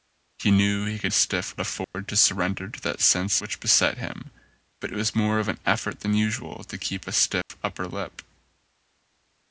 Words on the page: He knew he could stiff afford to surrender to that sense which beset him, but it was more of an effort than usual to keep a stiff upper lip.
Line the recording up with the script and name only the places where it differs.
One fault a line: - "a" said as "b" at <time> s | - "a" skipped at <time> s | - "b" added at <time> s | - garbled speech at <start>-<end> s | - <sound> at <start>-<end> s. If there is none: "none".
- dropout at 1.8-1.9 s
- dropout at 7.4-7.5 s